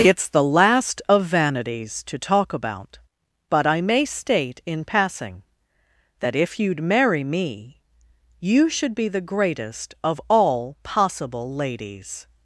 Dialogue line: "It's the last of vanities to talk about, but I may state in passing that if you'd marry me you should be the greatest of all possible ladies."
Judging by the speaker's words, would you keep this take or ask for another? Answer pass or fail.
pass